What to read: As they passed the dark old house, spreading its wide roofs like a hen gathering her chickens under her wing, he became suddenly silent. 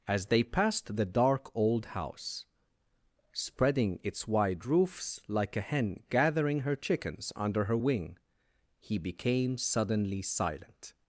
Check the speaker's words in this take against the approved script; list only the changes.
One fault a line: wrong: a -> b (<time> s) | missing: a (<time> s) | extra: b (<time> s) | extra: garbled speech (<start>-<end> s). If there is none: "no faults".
no faults